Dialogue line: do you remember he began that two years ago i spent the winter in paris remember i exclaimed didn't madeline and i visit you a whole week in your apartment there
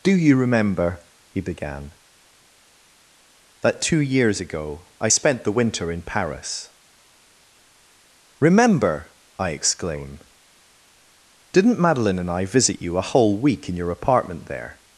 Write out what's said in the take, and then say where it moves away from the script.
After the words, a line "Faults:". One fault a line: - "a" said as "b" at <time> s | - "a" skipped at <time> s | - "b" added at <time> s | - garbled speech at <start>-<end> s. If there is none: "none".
do you remember he began that two years ago i spent the winter in paris remember i exclaim didn't madeline and i visit you a whole week in your apartment there
Faults:
- "exclaimed" said as "exclaim" at 9.5 s